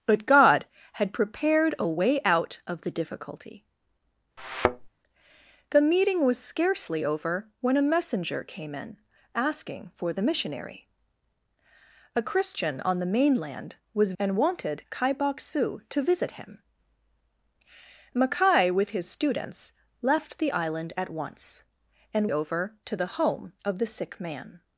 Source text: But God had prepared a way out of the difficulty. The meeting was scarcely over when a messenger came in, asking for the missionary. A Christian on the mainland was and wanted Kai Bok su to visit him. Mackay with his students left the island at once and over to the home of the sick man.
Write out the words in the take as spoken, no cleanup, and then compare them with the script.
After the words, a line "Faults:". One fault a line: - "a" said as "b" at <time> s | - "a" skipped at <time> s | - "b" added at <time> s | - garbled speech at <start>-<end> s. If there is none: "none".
But God had prepared a way out of the difficulty. The meeting was scarcely over when a messenger came in, asking for the missionary. A Christian on the mainland was and wanted Kai Bok su to visit him. Mackay with his students left the island at once and over to the home of the sick man.
Faults:
none